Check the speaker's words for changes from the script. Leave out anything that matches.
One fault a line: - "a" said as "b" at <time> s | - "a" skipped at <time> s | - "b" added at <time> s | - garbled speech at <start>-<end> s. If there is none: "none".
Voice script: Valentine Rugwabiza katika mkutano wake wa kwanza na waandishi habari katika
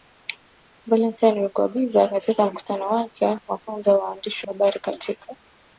none